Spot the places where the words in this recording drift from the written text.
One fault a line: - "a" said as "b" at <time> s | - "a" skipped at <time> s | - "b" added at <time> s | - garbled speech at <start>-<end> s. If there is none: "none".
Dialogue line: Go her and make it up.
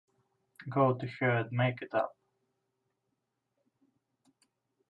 - "to" added at 1.0 s